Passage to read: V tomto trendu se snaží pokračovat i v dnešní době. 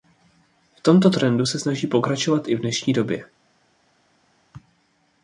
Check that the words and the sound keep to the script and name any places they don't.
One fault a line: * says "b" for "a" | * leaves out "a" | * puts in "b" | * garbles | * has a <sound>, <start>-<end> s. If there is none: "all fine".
all fine